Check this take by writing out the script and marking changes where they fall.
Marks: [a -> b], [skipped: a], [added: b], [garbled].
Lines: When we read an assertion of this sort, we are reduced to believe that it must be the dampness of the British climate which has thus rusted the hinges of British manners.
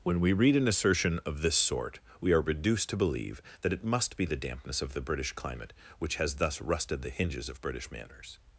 When we read an assertion of this sort, we are reduced to believe that it must be the dampness of the British climate which has thus rusted the hinges of British manners.